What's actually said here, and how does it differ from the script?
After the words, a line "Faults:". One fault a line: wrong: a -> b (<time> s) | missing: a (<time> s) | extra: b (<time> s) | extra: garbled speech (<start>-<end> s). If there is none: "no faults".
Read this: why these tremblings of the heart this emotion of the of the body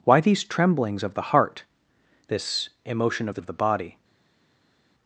why these tremblings of the heart this emotion of the of the body
Faults:
no faults